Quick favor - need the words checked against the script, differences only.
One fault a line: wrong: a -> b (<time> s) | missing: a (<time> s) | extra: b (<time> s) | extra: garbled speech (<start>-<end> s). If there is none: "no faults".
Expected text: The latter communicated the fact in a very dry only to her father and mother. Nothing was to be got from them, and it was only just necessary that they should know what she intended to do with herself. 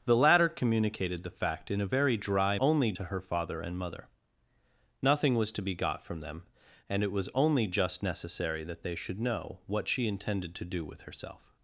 no faults